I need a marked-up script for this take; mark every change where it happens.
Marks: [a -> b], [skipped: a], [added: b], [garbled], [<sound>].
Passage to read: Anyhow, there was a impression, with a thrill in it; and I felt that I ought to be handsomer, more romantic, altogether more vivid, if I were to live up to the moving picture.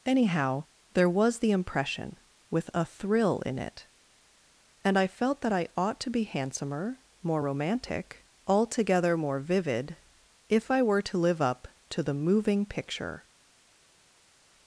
Anyhow, there was [a -> the] impression, with a thrill in it; and I felt that I ought to be handsomer, more romantic, altogether more vivid, if I were to live up to the moving picture.